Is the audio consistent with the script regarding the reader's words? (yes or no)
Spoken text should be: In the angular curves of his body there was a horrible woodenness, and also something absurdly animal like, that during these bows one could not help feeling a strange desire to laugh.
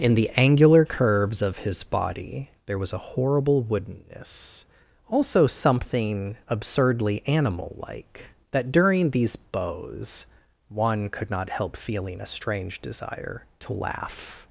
no